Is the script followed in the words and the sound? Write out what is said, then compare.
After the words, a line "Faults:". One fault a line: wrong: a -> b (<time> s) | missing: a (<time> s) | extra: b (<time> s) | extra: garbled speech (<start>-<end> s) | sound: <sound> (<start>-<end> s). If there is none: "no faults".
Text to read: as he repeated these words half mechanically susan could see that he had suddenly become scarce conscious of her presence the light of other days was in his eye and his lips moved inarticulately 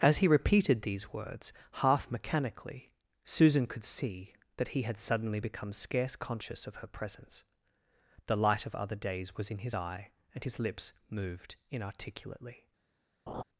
as he repeated these words half mechanically susan could see that he had suddenly become scarce conscious of her presence the light of other days was in his eye and his lips moved inarticulately
Faults:
sound: laugh (13.3-13.4 s)